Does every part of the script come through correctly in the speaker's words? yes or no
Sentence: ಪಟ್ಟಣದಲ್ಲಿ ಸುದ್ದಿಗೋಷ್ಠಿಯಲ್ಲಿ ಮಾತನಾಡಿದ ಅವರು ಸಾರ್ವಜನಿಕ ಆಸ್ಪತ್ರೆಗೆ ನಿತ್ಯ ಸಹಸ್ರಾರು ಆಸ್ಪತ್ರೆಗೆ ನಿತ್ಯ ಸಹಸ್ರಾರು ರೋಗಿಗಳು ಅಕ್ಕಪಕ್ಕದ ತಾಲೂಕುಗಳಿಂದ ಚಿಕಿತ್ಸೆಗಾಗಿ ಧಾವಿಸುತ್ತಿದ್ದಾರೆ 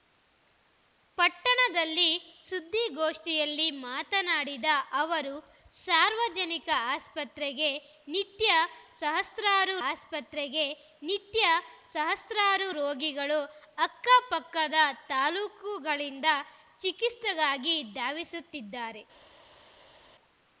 yes